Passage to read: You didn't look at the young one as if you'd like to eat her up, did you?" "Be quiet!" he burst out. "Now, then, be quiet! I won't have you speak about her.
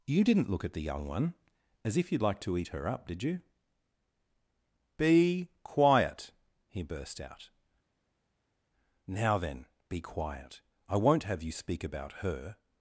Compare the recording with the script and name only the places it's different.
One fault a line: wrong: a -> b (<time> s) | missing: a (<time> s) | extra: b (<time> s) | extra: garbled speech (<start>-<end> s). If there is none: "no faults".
no faults